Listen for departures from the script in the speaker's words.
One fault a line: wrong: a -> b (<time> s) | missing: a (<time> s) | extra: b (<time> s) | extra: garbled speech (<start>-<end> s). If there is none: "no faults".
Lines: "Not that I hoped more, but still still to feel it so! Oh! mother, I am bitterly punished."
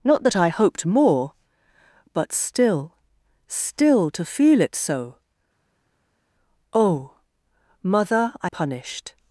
missing: am bitterly (8.5 s)